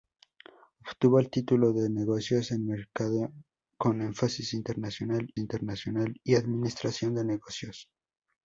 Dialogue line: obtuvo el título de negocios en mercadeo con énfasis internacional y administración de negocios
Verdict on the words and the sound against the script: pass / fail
fail